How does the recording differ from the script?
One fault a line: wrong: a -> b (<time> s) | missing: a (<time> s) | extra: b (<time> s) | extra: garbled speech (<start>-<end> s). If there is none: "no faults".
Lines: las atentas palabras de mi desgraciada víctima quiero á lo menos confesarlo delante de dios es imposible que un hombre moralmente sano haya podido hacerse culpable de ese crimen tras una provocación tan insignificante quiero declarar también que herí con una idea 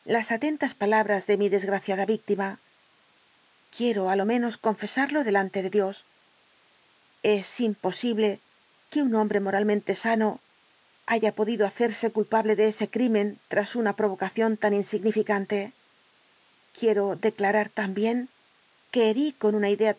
no faults